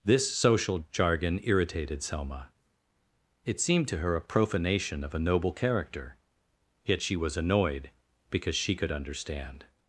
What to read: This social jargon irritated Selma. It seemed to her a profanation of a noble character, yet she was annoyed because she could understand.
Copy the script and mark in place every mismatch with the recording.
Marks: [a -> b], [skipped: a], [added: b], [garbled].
This social jargon irritated Selma. It seemed to her a profanation of a noble character, yet she was annoyed because she could understand.